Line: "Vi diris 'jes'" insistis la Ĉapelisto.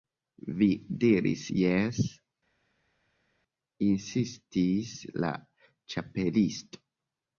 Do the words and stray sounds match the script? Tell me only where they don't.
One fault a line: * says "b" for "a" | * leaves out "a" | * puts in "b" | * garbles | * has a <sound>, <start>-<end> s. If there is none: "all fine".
all fine